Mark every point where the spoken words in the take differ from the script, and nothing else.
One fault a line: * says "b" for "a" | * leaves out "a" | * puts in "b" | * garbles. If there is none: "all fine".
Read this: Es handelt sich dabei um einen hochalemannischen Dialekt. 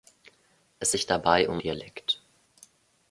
* leaves out "handelt"
* leaves out "einen hochalemannischen"